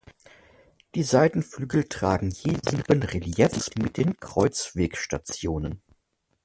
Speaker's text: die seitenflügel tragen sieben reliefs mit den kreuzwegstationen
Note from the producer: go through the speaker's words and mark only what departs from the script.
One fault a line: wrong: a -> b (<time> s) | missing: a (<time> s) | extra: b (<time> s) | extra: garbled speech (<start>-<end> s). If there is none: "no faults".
extra: je (2.3 s)